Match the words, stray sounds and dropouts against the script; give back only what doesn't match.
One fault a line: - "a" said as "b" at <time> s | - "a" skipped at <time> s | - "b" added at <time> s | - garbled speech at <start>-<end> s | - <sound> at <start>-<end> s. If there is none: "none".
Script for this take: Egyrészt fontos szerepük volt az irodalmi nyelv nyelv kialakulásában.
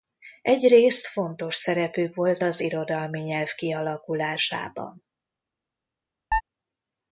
- "nyelv" skipped at 3.5 s
- chirp at 6.3-6.4 s